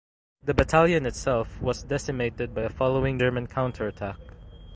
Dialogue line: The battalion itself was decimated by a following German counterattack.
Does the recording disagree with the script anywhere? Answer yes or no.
no